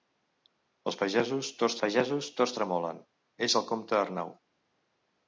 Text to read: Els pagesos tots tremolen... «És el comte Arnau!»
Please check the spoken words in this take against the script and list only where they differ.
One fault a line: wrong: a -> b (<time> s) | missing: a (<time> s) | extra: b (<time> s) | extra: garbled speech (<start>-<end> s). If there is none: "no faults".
extra: pagesos tots (1.8 s)